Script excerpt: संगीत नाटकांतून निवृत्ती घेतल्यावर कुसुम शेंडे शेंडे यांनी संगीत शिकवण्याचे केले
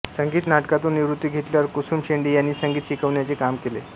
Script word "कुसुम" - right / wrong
right